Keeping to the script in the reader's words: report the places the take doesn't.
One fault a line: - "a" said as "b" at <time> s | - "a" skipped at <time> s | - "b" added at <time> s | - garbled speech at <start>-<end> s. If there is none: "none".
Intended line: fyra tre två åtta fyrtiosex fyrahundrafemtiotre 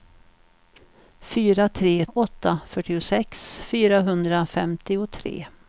- "två" skipped at 2.0 s